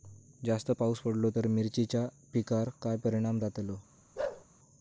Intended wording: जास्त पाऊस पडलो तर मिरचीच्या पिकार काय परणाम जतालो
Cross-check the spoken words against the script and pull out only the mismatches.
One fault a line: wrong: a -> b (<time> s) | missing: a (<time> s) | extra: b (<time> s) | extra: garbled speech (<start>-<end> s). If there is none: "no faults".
no faults